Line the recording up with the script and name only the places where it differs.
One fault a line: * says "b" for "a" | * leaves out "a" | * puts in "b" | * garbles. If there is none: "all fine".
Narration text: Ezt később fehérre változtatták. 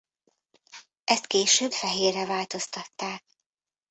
all fine